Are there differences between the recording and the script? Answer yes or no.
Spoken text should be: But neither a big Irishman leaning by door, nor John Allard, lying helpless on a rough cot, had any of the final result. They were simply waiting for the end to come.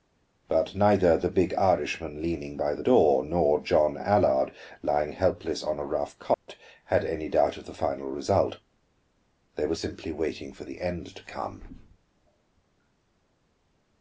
yes